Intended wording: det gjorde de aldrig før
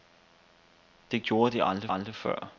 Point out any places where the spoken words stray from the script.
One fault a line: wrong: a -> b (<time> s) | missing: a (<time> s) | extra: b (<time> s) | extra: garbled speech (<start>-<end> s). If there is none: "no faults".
extra: aldrig (1.9 s)